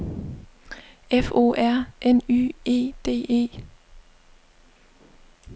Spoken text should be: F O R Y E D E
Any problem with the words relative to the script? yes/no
yes